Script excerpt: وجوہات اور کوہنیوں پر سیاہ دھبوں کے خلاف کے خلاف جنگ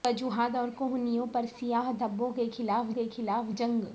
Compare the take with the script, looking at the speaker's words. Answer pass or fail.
pass